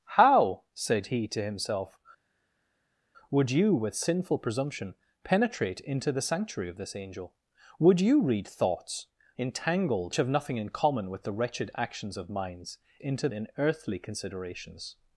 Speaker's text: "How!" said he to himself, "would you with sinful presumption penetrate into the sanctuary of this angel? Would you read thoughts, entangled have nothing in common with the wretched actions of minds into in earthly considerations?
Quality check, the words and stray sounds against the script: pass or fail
pass